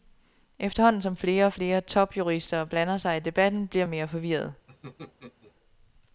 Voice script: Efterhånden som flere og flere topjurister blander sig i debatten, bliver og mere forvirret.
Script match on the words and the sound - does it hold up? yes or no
no